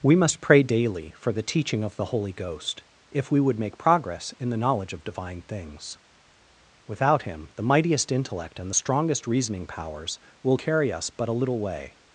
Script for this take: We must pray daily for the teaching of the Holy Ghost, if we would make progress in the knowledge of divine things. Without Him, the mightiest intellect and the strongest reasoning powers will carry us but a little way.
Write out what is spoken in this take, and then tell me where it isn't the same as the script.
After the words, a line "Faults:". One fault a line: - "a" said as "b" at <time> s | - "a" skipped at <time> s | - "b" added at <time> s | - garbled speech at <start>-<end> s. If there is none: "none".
We must pray daily for the teaching of the Holy Ghost, if we would make progress in the knowledge of divine things. Without Him, the mightiest intellect and the strongest reasoning powers will carry us but a little way.
Faults:
none